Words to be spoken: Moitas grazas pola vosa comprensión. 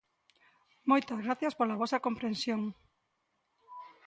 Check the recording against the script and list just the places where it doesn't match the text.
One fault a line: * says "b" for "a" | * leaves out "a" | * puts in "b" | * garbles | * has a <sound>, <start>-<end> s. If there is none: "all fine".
all fine